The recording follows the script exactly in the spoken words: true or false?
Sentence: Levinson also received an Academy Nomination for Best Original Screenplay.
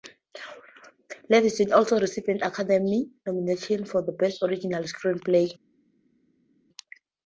true